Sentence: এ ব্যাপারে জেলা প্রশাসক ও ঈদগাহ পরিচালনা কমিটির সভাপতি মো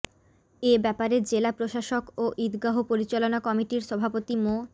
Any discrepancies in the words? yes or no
no